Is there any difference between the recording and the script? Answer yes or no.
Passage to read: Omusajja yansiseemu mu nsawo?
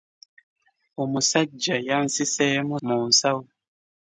no